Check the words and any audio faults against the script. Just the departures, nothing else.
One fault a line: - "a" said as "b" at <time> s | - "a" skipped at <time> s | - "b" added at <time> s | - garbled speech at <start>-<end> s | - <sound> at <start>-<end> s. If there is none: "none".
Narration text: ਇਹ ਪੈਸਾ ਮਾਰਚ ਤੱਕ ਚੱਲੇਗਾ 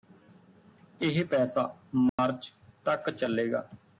- dropout at 2.1-2.2 s